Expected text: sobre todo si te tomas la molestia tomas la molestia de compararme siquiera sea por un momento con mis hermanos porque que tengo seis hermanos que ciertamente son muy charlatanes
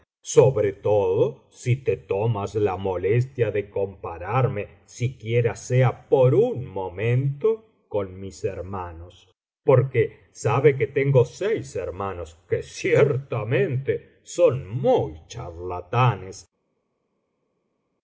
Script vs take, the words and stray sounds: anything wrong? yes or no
yes